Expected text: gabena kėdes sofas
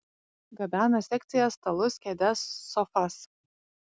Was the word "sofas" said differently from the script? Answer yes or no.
no